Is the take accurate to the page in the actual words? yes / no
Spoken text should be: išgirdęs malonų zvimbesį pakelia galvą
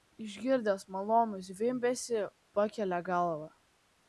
yes